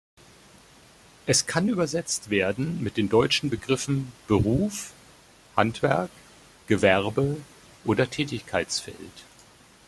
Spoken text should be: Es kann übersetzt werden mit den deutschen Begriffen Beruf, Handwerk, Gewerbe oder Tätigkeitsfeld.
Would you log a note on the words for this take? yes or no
no